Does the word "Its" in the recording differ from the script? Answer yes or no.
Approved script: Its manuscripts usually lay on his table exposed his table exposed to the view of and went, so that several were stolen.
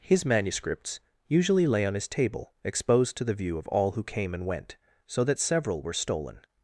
yes